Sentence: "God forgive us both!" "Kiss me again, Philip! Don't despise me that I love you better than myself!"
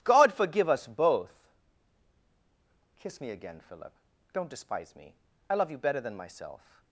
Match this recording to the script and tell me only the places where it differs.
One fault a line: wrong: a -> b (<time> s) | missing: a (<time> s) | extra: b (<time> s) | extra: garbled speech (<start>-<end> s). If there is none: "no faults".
missing: that (5.2 s)